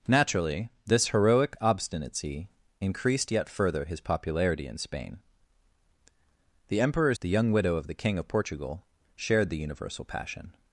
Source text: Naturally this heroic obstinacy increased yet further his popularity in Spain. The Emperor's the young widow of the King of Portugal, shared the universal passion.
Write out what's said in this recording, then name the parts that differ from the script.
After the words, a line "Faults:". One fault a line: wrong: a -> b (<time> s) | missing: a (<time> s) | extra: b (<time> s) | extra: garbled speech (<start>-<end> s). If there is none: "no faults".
Naturally this heroic obstinacy increased yet further his popularity in Spain. The Emperor's the young widow of the King of Portugal, shared the universal passion.
Faults:
no faults